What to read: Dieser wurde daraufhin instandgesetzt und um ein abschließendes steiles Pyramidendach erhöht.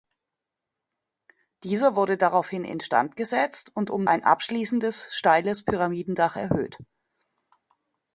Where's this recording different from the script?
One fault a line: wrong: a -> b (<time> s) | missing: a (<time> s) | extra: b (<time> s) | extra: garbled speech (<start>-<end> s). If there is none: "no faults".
no faults